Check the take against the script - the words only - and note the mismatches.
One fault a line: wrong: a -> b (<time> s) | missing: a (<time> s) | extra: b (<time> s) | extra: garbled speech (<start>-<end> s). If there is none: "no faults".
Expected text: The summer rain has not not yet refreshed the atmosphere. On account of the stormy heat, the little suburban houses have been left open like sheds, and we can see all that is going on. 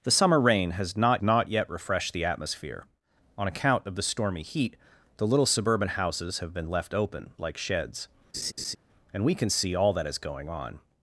no faults